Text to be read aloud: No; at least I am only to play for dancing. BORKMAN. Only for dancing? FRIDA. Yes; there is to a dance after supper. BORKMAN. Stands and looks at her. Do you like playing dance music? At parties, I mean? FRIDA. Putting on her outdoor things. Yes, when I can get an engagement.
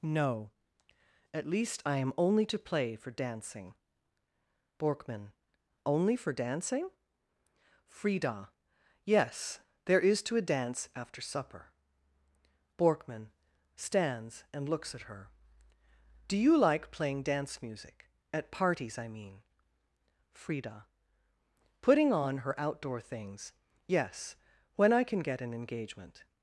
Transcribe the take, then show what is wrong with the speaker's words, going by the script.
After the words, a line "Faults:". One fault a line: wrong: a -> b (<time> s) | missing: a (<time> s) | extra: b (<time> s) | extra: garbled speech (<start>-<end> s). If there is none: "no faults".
No; at least I am only to play for dancing. BORKMAN. Only for dancing? FRIDA. Yes; there is to a dance after supper. BORKMAN. Stands and looks at her. Do you like playing dance music? At parties, I mean? FRIDA. Putting on her outdoor things. Yes, when I can get an engagement.
Faults:
no faults